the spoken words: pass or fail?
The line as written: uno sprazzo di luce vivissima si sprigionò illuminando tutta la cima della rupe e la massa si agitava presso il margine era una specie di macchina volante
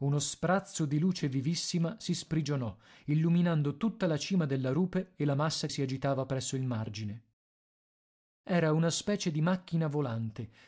pass